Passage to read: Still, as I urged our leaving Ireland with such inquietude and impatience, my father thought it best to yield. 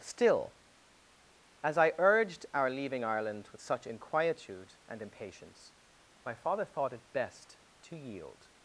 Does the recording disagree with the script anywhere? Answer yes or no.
no